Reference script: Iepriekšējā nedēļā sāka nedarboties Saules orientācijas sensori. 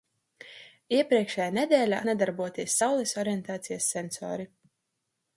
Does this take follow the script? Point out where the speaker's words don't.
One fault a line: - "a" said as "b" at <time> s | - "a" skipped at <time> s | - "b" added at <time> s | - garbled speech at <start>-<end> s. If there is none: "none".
- "sāka" skipped at 2.0 s